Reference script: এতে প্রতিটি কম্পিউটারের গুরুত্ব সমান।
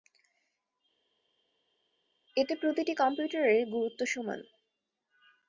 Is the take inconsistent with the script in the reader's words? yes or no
no